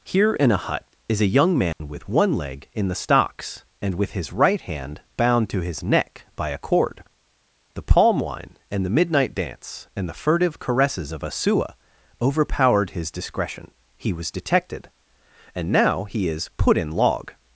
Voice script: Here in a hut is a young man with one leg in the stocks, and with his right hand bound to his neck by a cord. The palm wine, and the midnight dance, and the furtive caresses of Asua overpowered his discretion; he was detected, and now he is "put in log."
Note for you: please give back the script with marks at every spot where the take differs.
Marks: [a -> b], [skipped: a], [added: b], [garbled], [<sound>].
Here in a hut is a young man [dropout] with one leg in the stocks, and with his right hand bound to his neck by a cord. The palm wine, and the midnight dance, and the furtive caresses of Asua overpowered his discretion; he was detected, and now he is "put in log."